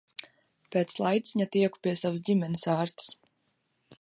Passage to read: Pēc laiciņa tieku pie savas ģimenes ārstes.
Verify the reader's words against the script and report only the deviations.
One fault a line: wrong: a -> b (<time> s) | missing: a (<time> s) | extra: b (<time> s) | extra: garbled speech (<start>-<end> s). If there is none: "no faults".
no faults